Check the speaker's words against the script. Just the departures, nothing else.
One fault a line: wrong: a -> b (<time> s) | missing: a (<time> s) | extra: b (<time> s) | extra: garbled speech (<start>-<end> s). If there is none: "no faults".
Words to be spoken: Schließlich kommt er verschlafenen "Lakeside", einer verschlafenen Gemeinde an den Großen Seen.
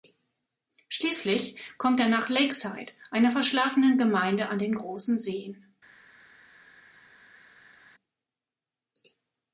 wrong: verschlafenen -> nach (2.1 s)